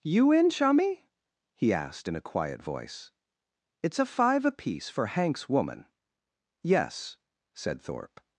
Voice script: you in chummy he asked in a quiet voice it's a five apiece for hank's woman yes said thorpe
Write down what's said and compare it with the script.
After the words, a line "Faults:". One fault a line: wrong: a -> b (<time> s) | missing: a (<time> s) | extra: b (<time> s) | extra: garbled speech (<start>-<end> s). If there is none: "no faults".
you in chummy he asked in a quiet voice it's a five apiece for hank's woman yes said thorpe
Faults:
no faults